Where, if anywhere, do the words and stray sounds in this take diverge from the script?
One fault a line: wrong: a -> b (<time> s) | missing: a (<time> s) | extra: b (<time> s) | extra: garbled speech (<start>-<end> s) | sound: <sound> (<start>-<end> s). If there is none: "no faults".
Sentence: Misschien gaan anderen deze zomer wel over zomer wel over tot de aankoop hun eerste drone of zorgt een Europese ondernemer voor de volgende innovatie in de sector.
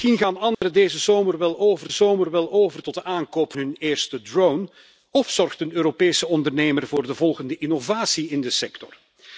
sound: dropout (0.5-0.6 s)